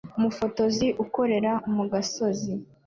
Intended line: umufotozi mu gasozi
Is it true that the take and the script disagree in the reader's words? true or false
true